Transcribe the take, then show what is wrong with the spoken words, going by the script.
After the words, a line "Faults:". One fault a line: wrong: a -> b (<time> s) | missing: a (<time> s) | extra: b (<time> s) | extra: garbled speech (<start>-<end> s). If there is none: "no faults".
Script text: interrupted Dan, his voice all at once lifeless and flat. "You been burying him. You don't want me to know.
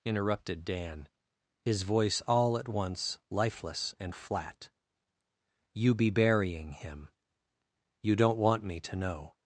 interrupted Dan, his voice all at once lifeless and flat. "You be burying him. You don't want me to know.
Faults:
wrong: been -> be (5.9 s)